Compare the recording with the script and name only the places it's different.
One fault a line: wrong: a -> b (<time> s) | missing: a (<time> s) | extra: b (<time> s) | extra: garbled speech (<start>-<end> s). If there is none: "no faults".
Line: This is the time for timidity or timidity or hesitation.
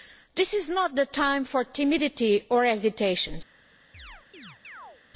extra: not (0.7 s)
missing: timidity or (2.6 s)